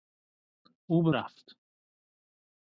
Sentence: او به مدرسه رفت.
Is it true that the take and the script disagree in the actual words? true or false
true